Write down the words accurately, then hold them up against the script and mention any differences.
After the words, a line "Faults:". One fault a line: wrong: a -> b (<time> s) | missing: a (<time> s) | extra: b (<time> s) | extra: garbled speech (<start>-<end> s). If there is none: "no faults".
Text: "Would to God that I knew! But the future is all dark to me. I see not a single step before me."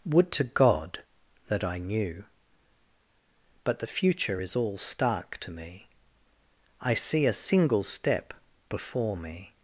"Would to God that I knew! But the future is all stark to me. I see a single step before me."
Faults:
wrong: dark -> stark (4.8 s)
missing: not (7.3 s)